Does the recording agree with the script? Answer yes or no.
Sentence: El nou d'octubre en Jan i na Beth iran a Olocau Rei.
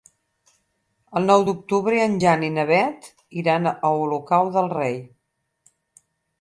no